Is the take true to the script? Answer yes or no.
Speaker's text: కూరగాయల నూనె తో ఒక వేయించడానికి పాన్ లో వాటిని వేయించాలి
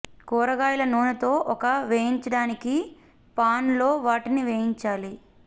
yes